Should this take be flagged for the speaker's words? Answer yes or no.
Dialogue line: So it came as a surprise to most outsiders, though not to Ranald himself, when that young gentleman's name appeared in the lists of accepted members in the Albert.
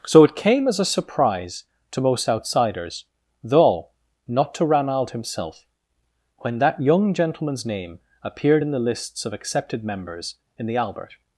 no